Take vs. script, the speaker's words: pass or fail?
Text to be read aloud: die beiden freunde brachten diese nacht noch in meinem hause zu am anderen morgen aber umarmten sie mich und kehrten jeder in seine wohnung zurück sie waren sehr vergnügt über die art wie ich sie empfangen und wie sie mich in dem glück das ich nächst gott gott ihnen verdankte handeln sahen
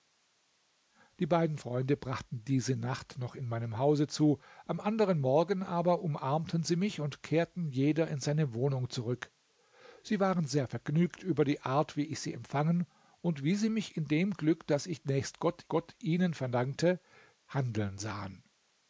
pass